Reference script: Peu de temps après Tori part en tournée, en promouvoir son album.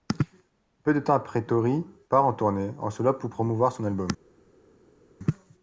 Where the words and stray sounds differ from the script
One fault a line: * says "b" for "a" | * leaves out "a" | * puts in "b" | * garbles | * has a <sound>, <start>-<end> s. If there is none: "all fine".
* puts in "solo pour"